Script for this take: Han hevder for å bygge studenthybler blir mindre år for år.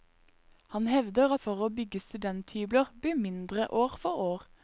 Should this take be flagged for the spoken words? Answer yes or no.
no